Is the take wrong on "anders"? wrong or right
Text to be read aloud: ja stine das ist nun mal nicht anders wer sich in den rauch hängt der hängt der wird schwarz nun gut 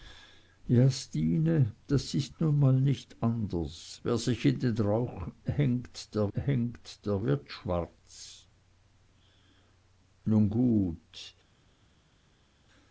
right